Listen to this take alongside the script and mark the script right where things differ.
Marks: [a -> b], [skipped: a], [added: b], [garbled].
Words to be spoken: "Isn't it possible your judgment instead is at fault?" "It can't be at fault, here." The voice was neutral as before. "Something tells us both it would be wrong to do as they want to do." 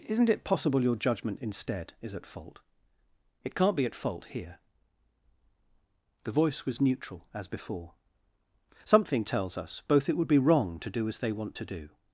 "Isn't it possible your judgment instead is at fault?" "It can't be at fault, here." The voice was neutral as before. "Something tells us both it would be wrong to do as they want to do."